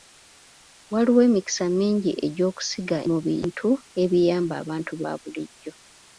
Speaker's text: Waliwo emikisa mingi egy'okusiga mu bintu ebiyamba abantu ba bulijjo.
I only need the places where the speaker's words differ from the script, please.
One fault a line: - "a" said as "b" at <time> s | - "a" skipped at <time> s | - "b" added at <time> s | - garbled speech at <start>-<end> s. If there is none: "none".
none